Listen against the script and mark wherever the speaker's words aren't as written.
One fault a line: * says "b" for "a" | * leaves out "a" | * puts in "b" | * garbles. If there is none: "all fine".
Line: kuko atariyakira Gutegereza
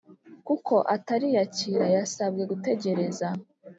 * puts in "Yasabwe"